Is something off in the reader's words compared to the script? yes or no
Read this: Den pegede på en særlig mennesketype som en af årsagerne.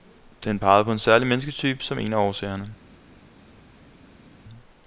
no